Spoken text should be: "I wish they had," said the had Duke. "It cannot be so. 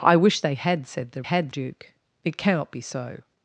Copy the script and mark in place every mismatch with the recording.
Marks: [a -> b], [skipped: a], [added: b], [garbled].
"I wish they had," said the had Duke. "It cannot be so.